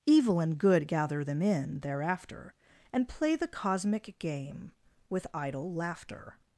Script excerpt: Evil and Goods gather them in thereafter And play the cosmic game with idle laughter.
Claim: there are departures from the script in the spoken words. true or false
true